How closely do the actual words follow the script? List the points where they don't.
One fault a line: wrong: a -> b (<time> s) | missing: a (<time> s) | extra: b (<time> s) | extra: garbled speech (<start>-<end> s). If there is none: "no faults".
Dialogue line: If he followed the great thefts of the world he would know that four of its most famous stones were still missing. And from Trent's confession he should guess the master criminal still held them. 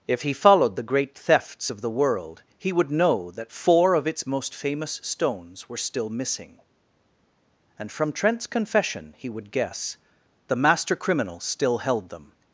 wrong: should -> would (9.3 s)